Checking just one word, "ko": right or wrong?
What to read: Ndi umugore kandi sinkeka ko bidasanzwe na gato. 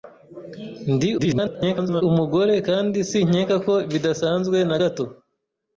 right